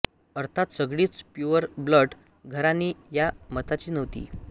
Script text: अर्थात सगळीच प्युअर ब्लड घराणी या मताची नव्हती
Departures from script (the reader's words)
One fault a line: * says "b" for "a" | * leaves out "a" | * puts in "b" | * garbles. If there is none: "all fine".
all fine